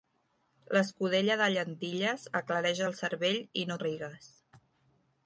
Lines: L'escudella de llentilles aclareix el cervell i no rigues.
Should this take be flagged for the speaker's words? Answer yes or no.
no